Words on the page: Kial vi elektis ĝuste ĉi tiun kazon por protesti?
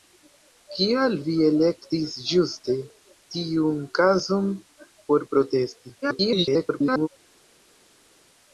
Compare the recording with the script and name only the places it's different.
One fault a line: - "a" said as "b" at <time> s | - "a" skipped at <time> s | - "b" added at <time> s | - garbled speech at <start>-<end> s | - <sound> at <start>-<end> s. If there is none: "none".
- "ĉi" skipped at 2.8 s
- garbled speech at 6.0-7.1 s